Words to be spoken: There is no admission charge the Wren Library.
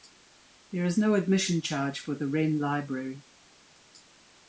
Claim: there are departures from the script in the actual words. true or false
true